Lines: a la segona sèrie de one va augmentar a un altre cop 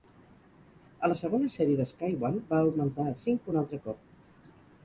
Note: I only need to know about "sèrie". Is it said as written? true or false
true